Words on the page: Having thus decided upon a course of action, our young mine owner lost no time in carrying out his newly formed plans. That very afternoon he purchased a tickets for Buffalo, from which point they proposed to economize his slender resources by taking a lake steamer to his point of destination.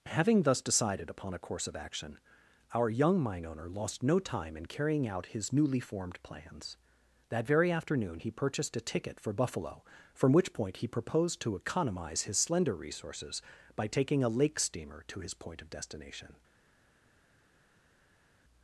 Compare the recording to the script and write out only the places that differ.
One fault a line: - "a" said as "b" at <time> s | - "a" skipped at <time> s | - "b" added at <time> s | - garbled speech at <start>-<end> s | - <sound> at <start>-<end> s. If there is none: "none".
- "tickets" said as "ticket" at 8.8 s
- "they" said as "he" at 10.8 s